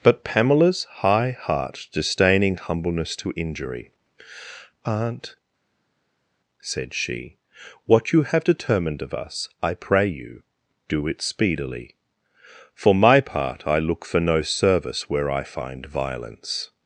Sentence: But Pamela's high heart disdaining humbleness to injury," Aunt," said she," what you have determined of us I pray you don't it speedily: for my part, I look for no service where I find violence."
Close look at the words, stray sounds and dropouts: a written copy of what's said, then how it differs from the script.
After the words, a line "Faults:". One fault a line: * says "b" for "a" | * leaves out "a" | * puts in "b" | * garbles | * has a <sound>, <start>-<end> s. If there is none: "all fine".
But Pamela's high heart disdaining humbleness to injury," Aunt," said she," what you have determined of us I pray you do it speedily: for my part, I look for no service where I find violence."
Faults:
* says "do" for "don't"